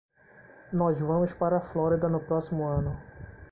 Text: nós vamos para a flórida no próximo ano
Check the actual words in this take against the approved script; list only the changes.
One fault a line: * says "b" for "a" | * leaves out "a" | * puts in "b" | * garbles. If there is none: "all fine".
all fine